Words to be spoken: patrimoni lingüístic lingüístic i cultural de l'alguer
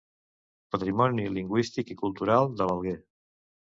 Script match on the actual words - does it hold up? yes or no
no